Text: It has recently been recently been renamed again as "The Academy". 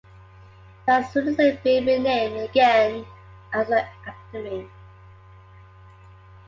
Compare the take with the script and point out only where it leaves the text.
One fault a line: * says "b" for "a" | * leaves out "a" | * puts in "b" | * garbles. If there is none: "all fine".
* leaves out "recently been"